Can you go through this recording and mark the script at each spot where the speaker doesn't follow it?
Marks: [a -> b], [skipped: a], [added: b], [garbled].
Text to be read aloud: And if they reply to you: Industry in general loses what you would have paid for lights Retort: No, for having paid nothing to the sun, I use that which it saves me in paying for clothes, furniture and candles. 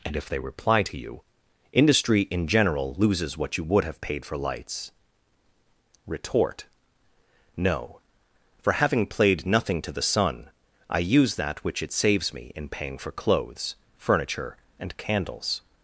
And if they reply to you: Industry in general loses what you would have paid for lights Retort: No, for having [paid -> played] nothing to the sun, I use that which it saves me in paying for clothes, furniture and candles.